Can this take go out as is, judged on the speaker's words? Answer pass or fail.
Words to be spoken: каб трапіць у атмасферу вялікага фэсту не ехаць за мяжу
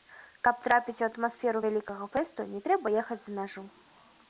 fail